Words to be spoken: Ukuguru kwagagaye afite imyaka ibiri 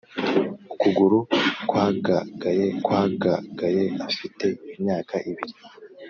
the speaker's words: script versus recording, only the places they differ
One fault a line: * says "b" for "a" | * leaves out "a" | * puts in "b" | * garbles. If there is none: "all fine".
* puts in "kwagagaye"